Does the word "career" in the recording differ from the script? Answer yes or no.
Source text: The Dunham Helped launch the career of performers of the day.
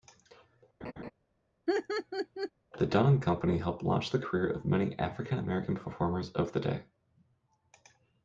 no